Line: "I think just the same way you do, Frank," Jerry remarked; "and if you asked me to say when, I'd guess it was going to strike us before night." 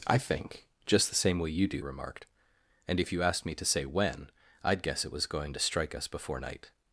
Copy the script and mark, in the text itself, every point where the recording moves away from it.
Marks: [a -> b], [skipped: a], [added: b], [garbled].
"I think just the same way you do, [skipped: Frank," Jerry] remarked; "and if you asked me to say when, I'd guess it was going to strike us before night."